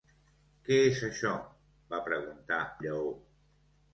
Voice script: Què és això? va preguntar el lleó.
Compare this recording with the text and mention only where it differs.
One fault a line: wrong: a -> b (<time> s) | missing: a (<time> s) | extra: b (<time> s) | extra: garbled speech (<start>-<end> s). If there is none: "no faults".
missing: el (2.6 s)